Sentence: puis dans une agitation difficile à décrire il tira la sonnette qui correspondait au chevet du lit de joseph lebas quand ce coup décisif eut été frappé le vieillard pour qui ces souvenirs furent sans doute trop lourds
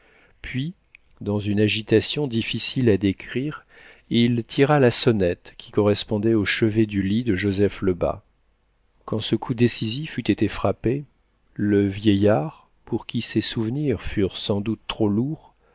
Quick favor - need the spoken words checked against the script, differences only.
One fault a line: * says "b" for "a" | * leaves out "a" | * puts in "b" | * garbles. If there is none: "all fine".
all fine